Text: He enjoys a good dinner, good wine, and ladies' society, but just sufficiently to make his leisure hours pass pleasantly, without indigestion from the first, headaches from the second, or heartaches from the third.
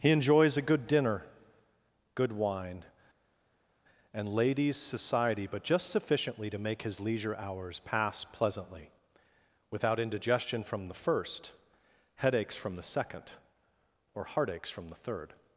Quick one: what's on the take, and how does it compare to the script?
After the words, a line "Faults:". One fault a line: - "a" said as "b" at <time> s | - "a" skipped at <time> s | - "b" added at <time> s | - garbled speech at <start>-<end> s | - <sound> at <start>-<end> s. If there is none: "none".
He enjoys a good dinner, good wine, and ladies' society, but just sufficiently to make his leisure hours pass pleasantly, without indigestion from the first, headaches from the second, or heartaches from the third.
Faults:
none